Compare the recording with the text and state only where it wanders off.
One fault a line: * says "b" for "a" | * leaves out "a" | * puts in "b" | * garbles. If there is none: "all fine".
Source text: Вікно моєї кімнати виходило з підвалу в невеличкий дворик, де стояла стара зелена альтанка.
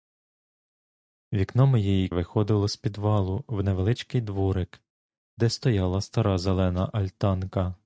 * leaves out "кімнати"